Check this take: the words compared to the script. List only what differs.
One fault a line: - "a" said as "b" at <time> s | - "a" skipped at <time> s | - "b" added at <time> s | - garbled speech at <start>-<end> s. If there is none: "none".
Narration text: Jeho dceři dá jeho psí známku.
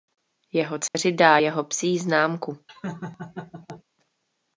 none